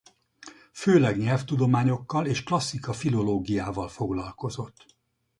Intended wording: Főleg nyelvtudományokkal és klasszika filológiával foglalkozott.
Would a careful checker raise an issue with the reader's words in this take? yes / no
no